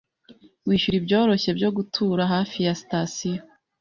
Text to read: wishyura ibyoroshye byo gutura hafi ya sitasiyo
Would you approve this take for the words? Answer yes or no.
yes